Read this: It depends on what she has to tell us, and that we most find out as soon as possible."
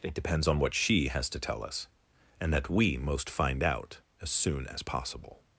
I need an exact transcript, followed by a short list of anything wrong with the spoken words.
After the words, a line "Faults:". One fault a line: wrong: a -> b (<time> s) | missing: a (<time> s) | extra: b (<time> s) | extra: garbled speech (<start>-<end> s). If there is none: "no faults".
It depends on what she has to tell us, and that we most find out as soon as possible."
Faults:
no faults